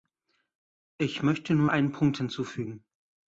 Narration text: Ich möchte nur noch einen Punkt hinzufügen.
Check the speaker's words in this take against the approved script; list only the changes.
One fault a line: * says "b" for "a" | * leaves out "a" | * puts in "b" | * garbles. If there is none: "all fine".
* leaves out "noch"